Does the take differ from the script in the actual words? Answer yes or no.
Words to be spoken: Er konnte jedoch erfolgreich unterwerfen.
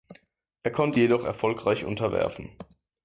no